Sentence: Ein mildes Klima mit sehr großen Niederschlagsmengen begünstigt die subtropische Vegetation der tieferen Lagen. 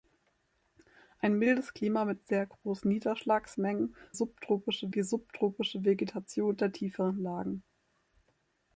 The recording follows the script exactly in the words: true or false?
false